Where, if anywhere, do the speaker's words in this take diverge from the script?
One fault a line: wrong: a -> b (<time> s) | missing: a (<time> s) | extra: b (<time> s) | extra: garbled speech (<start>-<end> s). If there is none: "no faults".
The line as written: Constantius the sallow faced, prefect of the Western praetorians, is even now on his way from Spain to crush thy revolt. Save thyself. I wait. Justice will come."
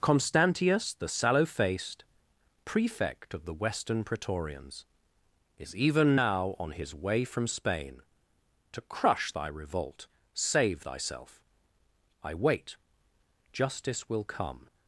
no faults